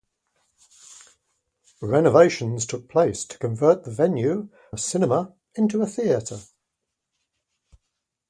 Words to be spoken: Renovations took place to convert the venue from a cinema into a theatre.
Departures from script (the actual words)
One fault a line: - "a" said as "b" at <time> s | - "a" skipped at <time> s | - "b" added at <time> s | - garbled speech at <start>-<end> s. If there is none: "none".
- "from" skipped at 4.5 s